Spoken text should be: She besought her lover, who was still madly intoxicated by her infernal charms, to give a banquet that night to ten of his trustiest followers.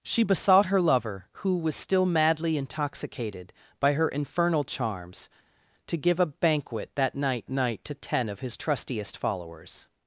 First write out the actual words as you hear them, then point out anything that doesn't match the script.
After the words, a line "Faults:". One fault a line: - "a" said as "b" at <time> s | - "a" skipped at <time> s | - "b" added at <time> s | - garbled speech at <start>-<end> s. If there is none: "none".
She besought her lover, who was still madly intoxicated by her infernal charms, to give a banquet that night night to ten of his trustiest followers.
Faults:
- "night" added at 7.5 s